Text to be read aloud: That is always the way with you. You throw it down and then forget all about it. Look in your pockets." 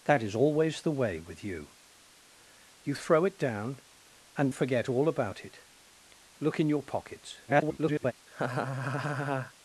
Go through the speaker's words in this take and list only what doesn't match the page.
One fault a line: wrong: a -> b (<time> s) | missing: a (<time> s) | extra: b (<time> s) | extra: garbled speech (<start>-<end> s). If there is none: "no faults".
missing: then (4.5 s)
extra: garbled speech (7.5-8.1 s)